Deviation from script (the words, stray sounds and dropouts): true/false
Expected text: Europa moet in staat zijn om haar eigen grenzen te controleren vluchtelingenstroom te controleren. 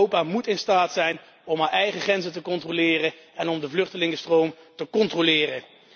true